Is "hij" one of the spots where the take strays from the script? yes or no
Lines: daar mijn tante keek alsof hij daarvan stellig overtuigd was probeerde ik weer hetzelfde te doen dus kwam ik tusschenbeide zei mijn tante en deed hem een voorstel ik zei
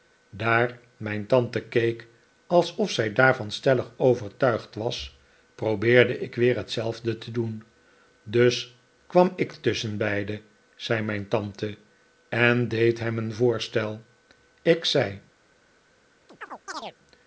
yes